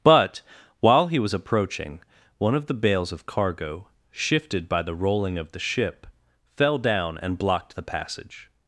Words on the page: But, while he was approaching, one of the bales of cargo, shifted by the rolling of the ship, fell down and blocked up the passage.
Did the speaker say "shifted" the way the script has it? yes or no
yes